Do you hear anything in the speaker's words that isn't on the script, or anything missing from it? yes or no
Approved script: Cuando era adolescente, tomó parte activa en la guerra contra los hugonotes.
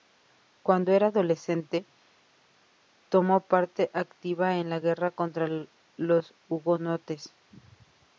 no